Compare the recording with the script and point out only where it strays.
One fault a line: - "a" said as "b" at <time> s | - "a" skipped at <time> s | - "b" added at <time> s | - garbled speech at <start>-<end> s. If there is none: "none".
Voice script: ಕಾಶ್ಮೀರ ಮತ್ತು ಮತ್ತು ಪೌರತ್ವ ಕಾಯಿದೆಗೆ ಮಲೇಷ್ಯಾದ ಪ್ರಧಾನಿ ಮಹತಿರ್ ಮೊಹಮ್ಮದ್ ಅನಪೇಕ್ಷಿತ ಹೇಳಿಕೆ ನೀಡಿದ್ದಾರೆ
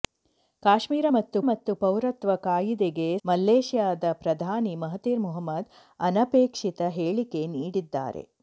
none